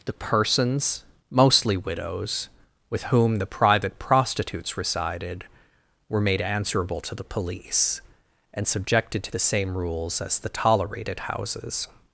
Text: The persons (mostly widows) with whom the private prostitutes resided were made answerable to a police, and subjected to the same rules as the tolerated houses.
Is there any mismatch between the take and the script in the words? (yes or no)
yes